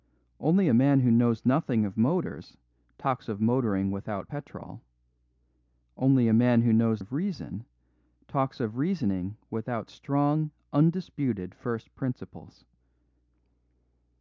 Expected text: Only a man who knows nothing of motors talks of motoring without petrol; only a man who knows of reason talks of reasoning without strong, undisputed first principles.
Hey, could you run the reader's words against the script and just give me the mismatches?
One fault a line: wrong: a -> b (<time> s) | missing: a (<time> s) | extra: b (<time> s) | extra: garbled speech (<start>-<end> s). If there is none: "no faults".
no faults